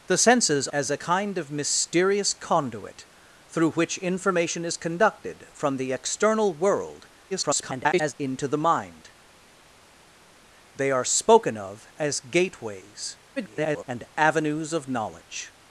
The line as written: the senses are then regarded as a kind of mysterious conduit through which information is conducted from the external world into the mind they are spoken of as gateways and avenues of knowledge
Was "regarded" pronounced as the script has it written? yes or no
no